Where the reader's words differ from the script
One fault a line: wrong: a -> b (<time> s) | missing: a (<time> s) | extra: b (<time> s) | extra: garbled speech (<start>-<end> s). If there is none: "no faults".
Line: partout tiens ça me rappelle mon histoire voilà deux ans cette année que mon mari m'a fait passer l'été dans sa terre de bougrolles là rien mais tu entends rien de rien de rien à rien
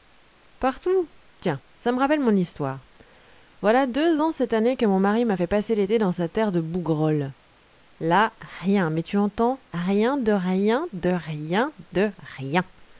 wrong: à -> de (11.9 s)